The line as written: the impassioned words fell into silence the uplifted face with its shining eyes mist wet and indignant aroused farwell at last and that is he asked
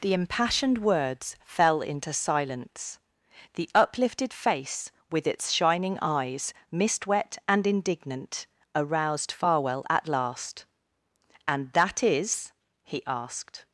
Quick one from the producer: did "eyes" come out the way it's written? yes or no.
yes